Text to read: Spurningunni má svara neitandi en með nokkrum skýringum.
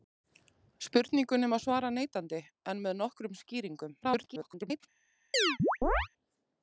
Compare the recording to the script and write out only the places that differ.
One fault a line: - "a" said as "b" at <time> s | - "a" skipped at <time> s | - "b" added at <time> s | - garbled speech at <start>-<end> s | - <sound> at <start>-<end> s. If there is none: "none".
- garbled speech at 4.0-4.8 s
- chirp at 5.3-6.1 s